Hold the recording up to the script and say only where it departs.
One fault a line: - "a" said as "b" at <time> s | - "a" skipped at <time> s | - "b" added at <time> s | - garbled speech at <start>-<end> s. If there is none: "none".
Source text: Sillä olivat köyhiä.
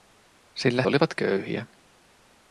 none